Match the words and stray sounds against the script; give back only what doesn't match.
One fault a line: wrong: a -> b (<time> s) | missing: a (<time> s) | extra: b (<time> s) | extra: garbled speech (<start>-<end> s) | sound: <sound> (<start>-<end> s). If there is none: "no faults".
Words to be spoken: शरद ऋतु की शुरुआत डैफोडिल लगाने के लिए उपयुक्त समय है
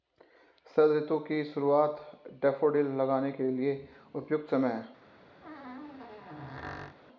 sound: squeak (5.4-7.0 s)